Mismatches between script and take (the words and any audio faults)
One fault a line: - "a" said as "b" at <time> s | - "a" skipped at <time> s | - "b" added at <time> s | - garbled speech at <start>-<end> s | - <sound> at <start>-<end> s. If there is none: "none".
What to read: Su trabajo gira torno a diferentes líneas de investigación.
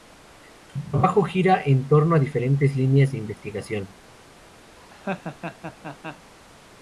- "en" added at 1.6 s
- laugh at 4.8-6.3 s